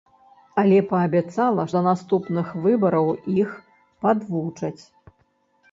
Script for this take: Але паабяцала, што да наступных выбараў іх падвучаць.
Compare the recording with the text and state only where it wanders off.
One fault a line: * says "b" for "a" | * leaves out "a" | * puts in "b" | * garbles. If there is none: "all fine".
* leaves out "што"